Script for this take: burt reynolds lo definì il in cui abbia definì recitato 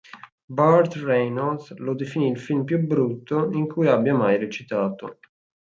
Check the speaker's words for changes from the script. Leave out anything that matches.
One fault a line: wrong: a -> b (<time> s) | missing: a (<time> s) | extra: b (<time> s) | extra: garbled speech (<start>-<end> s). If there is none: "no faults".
extra: film più brutto (2.4 s)
wrong: definì -> mai (4.2 s)